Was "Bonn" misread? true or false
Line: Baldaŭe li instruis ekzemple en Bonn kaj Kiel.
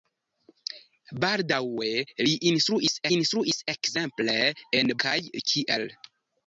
true